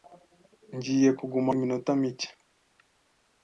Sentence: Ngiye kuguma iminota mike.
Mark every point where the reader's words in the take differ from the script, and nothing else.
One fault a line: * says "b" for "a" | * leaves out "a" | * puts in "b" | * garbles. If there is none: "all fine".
all fine